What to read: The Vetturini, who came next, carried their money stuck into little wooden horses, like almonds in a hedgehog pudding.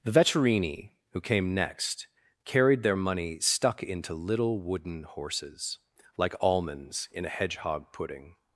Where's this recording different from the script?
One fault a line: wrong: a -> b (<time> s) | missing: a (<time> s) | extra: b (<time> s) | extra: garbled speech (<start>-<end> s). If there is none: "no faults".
no faults